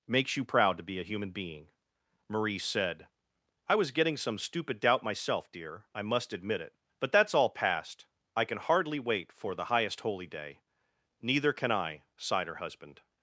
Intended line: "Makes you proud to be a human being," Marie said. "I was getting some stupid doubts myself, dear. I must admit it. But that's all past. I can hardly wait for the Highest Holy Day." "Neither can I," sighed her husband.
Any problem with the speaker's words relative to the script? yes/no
yes